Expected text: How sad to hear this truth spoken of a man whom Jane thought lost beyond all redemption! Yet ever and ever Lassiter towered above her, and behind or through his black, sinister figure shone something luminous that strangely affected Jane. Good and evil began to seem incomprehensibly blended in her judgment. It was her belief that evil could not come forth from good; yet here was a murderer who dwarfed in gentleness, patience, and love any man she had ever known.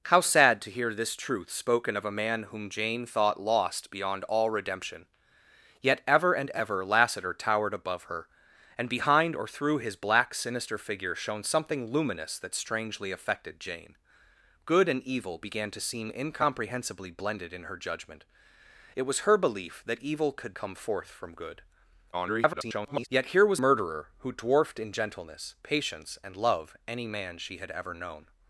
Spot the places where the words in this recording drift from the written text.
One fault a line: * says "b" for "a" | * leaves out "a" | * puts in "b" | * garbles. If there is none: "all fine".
* leaves out "not"
* garbles
* leaves out "a"